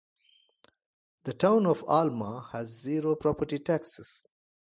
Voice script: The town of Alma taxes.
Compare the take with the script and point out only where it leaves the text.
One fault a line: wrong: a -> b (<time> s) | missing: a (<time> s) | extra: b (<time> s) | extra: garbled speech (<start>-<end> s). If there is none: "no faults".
extra: has zero property (2.5 s)